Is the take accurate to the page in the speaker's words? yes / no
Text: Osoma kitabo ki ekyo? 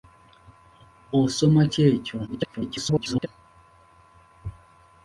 no